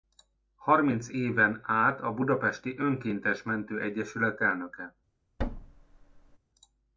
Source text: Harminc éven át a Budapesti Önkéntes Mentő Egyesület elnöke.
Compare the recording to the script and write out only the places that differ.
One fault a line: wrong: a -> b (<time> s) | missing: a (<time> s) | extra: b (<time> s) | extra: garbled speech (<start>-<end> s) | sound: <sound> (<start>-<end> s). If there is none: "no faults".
sound: thud (5.4-6.4 s)